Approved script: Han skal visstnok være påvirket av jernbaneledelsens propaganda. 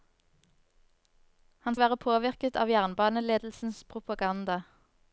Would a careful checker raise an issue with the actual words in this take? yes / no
yes